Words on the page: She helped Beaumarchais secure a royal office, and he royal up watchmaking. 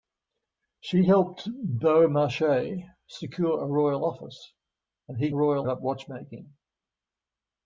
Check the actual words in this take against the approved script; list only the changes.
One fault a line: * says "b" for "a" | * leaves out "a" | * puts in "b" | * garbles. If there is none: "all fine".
all fine